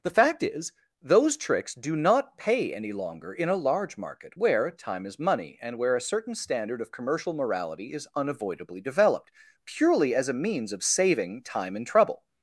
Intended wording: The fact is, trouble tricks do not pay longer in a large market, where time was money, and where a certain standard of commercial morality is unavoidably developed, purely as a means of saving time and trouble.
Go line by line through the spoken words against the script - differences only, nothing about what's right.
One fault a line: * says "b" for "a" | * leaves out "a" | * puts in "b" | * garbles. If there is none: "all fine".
* says "those" for "trouble"
* puts in "any"
* says "is" for "was"